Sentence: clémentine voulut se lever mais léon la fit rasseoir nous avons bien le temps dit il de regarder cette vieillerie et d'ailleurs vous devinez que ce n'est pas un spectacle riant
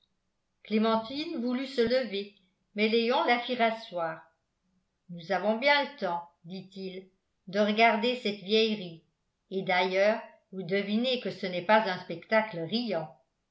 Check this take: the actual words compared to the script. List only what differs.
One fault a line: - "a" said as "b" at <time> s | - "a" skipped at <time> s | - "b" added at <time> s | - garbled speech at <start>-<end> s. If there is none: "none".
none